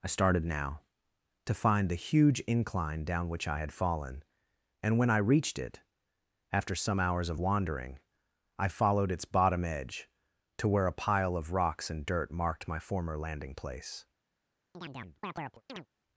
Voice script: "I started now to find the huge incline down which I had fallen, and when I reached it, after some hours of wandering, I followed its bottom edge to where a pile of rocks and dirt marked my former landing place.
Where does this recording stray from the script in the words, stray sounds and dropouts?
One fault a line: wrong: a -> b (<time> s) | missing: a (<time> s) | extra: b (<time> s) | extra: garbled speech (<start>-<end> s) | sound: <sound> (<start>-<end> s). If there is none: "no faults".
sound: chirp (14.7-15.9 s)